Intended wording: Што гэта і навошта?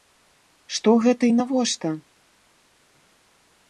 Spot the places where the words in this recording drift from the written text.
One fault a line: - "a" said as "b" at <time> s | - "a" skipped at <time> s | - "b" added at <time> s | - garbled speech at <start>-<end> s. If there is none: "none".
none